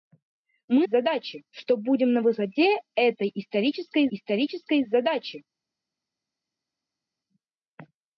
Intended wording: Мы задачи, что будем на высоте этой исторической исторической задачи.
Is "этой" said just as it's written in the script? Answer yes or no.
yes